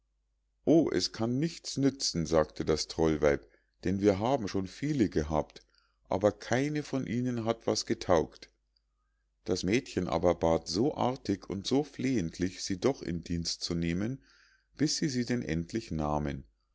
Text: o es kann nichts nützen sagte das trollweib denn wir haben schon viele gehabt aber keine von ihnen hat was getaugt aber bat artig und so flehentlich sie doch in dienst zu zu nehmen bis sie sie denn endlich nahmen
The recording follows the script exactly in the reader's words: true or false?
false